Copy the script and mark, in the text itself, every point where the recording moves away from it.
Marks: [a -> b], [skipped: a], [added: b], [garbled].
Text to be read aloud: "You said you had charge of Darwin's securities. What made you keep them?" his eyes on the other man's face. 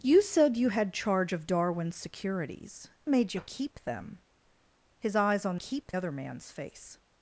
"You said you had charge of Darwin's securities. [skipped: What] made you keep them?" his eyes on [the -> keep] other man's face.